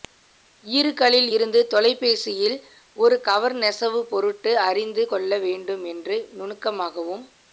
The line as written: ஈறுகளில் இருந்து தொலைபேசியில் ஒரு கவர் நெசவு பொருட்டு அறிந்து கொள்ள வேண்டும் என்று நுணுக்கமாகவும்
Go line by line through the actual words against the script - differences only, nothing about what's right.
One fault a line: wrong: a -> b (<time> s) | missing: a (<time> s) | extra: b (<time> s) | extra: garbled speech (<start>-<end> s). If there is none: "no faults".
no faults